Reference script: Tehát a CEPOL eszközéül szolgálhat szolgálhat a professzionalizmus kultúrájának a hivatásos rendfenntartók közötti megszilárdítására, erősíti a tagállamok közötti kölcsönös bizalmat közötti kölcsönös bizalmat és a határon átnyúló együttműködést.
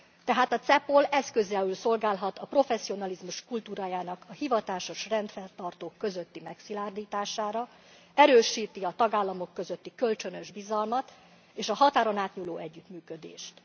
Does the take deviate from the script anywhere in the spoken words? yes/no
yes